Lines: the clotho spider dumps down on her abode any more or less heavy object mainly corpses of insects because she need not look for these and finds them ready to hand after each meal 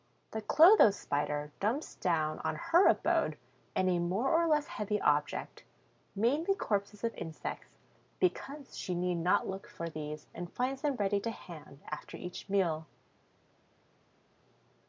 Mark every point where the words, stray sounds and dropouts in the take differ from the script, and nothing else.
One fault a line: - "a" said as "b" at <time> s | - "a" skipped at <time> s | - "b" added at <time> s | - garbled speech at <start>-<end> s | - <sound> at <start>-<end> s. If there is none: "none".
none